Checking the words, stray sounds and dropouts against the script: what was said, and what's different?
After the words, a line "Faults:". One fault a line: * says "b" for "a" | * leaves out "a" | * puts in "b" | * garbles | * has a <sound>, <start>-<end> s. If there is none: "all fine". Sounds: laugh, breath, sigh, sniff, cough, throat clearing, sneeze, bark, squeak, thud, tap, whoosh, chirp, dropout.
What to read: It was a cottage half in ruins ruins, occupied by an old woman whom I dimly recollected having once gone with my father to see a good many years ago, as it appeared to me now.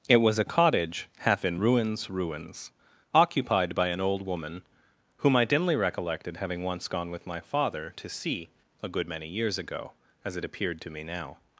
It was a cottage half in ruins ruins, occupied by an old woman whom I dimly recollected having once gone with my father to see a good many years ago, as it appeared to me now.
Faults:
all fine